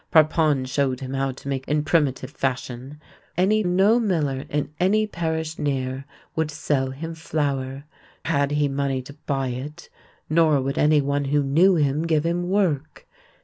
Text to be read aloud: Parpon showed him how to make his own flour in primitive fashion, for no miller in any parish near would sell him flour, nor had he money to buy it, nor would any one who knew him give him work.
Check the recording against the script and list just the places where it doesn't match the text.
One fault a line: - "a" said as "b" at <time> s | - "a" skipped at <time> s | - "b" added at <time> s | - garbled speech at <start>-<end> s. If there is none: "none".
- "his own flour" skipped at 1.7 s
- "for" said as "any" at 3.4 s
- "nor" skipped at 7.8 s